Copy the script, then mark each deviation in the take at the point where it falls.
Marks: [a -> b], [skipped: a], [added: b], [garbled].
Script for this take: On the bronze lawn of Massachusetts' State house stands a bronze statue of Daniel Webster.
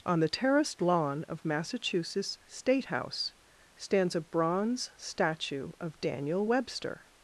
On the [bronze -> terraced] lawn of Massachusetts' State house stands a bronze statue of Daniel Webster.